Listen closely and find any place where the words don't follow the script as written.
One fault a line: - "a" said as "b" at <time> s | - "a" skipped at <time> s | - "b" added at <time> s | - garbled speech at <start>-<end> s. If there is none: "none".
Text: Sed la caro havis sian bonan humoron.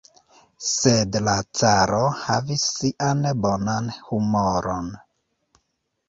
none